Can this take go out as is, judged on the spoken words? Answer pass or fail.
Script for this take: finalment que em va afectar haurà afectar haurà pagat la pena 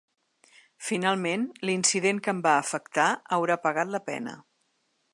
fail